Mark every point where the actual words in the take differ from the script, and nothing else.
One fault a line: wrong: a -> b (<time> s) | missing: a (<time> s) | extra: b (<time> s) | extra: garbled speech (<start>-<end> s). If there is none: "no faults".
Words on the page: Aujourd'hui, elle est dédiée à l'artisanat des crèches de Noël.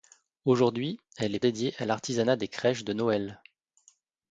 no faults